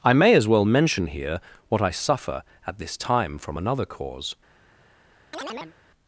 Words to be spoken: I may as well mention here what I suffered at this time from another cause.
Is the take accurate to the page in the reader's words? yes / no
no